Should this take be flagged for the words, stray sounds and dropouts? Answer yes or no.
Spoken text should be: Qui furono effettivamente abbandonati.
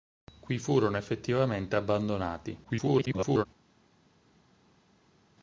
yes